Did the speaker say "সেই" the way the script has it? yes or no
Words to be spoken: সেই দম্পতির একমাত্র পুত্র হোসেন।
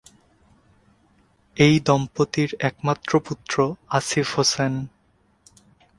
no